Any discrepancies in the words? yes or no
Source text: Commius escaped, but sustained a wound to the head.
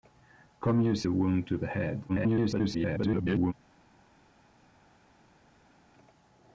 yes